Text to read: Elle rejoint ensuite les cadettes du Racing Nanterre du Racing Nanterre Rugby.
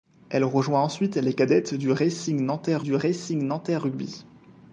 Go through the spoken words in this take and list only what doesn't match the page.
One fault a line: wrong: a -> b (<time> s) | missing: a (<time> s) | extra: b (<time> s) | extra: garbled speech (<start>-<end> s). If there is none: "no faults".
no faults